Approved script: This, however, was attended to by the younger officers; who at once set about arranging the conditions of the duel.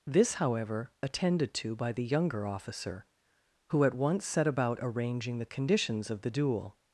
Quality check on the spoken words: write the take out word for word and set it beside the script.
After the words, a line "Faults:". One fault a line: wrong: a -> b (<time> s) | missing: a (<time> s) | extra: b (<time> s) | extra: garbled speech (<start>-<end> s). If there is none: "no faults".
This, however, attended to by the younger officer; who at once set about arranging the conditions of the duel.
Faults:
missing: was (0.9 s)
wrong: officers -> officer (2.5 s)